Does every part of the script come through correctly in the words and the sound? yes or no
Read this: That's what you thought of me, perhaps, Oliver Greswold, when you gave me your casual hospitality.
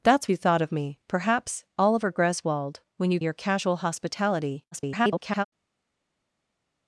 no